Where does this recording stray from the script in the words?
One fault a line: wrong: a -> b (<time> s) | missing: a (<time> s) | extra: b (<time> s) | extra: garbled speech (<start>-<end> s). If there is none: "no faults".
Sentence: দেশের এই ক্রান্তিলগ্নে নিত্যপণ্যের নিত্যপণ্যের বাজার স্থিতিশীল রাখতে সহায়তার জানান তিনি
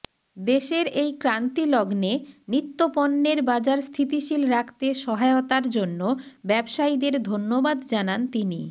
missing: নিত্যপণ্যের (3.4 s)
extra: জন্য ব্যবসায়ীদের ধন্যবাদ (5.7 s)